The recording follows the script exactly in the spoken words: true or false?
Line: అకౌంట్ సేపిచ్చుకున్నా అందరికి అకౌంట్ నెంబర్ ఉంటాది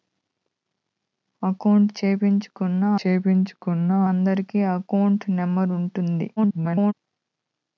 false